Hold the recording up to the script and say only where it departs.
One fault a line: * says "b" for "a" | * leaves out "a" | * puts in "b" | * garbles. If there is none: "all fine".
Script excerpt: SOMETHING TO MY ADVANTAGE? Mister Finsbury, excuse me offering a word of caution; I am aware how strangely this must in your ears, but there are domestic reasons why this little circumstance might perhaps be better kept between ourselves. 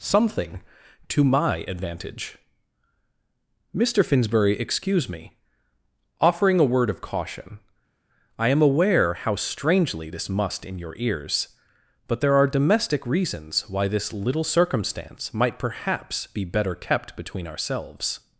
all fine